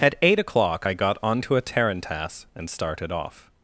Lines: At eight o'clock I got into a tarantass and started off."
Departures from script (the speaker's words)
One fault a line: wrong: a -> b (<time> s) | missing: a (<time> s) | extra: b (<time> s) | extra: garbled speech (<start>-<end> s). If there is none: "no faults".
wrong: into -> onto (1.2 s)